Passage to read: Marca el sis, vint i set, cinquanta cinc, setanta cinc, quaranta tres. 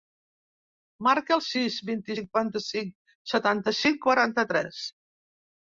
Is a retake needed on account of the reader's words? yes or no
yes